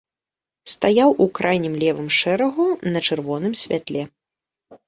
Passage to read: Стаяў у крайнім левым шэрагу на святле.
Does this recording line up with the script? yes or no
no